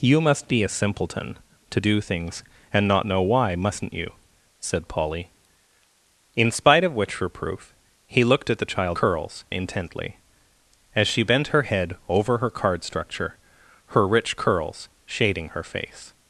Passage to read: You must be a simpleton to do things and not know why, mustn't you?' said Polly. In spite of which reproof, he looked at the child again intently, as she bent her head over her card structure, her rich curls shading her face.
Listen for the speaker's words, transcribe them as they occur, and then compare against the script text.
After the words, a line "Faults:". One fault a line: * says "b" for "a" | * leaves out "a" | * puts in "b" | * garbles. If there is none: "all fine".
You must be a simpleton to do things and not know why, mustn't you?' said Polly. In spite of which reproof, he looked at the child curls intently, as she bent her head over her card structure, her rich curls shading her face.
Faults:
* says "curls" for "again"